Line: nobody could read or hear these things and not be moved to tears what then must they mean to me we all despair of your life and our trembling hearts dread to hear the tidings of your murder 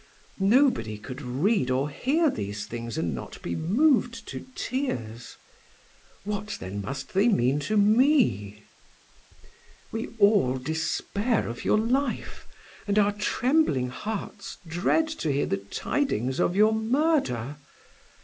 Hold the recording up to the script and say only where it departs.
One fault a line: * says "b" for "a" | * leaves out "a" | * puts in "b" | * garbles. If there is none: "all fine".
all fine